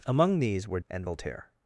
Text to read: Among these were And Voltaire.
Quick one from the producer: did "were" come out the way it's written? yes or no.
yes